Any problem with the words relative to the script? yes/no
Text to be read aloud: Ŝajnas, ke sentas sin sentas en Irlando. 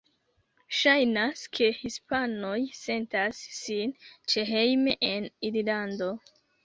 yes